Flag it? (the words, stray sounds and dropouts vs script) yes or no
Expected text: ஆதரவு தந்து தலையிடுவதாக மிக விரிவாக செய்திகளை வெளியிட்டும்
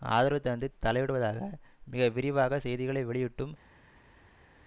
no